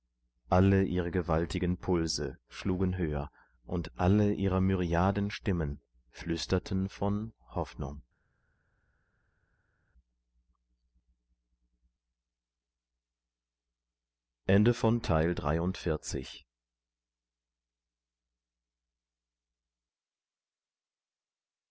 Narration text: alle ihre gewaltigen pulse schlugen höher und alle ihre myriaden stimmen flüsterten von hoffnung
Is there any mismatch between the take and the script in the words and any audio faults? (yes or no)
no